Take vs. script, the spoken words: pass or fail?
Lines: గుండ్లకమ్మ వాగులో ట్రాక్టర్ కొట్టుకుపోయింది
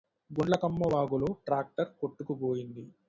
pass